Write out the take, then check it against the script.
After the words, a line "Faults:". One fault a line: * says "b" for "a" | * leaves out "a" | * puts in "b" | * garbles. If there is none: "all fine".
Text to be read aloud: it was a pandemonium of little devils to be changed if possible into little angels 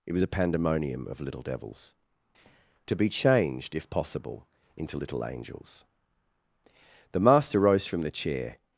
it was a pandemonium of little devils to be changed if possible into little angels the master rose from the chair
Faults:
* puts in "the master rose from the chair"